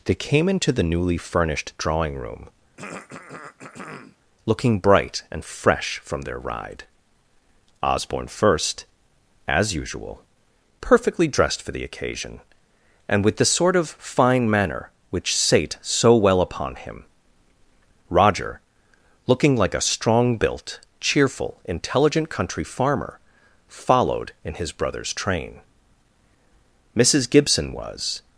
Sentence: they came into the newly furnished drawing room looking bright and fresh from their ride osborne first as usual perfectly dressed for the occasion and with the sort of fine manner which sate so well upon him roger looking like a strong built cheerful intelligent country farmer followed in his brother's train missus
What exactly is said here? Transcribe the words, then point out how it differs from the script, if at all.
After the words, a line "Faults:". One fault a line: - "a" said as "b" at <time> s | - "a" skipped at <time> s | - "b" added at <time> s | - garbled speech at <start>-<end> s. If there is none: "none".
they came into the newly furnished drawing room looking bright and fresh from their ride osborne first as usual perfectly dressed for the occasion and with the sort of fine manner which sate so well upon him roger looking like a strong built cheerful intelligent country farmer followed in his brother's train missus gibson was
Faults:
- "gibson was" added at 27.3 s